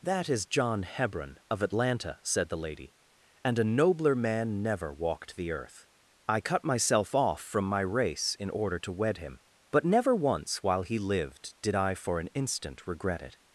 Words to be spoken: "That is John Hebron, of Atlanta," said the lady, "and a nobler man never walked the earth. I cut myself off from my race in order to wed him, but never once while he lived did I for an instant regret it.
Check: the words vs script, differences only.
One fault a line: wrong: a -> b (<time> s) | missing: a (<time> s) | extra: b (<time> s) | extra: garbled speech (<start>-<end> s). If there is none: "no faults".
no faults